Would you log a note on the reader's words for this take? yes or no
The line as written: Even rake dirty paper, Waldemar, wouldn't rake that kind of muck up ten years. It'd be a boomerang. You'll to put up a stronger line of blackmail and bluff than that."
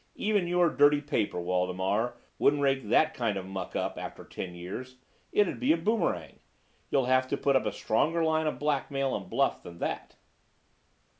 yes